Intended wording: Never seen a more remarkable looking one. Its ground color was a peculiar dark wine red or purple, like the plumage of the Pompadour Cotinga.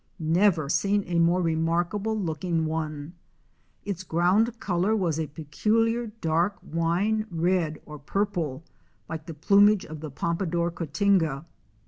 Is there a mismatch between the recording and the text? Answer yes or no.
no